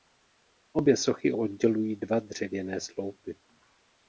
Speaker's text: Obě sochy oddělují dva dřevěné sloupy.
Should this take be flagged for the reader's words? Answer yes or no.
no